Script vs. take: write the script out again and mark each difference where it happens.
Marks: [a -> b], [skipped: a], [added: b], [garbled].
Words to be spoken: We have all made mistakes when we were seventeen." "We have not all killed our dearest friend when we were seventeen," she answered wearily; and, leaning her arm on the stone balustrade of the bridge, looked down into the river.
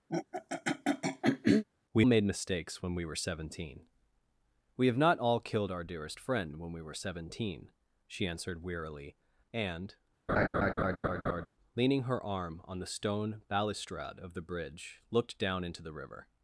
We [skipped: have all] made mistakes when we were seventeen." "We have not all killed our dearest friend when we were seventeen," she answered wearily; and, leaning her arm on the stone balustrade of the bridge, looked down into the river.